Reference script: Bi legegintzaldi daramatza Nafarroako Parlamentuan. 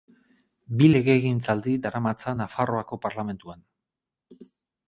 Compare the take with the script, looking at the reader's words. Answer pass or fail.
pass